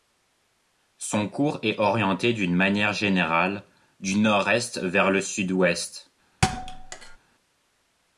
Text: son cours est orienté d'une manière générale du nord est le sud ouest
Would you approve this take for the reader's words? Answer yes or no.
no